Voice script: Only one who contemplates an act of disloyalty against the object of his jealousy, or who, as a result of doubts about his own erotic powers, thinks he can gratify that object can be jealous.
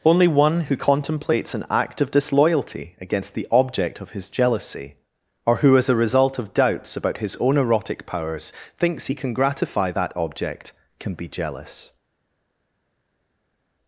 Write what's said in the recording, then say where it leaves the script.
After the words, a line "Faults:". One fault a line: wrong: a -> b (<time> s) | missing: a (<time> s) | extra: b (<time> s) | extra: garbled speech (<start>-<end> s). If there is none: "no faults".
Only one who contemplates an act of disloyalty against the object of his jealousy, or who, as a result of doubts about his own erotic powers, thinks he can gratify that object can be jealous.
Faults:
no faults